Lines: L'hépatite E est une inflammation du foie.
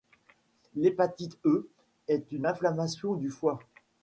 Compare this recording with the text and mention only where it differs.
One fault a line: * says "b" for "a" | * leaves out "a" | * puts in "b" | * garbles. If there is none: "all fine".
all fine